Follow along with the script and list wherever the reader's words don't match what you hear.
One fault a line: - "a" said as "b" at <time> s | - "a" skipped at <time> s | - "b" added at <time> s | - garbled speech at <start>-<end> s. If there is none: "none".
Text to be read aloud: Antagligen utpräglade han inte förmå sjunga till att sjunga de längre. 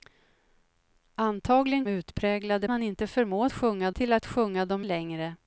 none